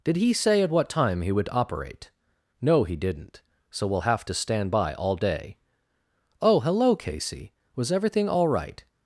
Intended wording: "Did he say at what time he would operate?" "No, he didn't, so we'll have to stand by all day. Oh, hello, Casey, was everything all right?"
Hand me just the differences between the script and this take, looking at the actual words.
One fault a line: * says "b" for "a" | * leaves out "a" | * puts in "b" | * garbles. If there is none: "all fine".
all fine